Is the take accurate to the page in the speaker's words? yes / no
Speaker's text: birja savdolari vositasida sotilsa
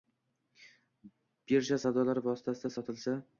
yes